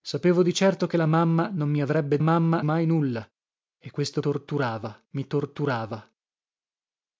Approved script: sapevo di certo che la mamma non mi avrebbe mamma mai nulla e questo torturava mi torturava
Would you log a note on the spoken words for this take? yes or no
no